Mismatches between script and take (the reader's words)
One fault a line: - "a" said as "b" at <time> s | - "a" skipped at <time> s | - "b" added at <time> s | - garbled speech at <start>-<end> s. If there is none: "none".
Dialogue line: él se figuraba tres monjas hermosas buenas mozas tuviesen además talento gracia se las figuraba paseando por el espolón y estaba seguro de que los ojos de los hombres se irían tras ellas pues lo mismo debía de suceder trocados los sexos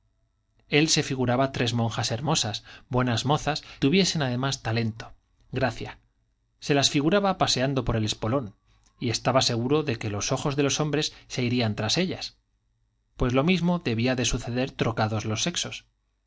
none